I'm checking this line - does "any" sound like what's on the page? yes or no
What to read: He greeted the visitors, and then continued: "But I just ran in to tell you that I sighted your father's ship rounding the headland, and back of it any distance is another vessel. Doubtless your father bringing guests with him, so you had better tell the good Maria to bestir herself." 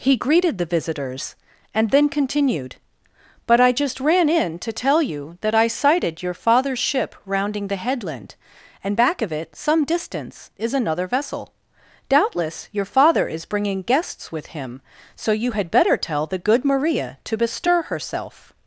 no